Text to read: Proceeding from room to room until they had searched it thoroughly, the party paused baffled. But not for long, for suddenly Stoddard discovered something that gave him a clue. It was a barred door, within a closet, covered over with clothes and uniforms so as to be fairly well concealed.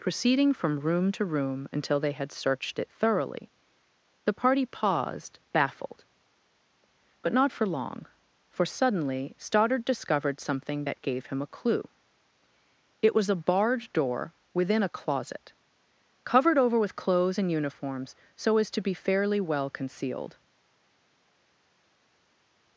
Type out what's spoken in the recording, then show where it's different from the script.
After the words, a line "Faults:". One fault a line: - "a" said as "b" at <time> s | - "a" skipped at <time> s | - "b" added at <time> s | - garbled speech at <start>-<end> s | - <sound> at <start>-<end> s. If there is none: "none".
Proceeding from room to room until they had searched it thoroughly, the party paused baffled. But not for long, for suddenly Stoddard discovered something that gave him a clue. It was a barred door, within a closet, covered over with clothes and uniforms so as to be fairly well concealed.
Faults:
none